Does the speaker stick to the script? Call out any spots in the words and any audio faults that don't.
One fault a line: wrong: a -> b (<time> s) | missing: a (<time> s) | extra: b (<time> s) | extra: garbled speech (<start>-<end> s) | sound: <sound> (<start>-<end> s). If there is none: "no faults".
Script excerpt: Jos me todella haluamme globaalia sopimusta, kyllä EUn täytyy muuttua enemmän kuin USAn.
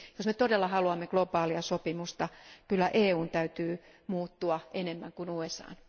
no faults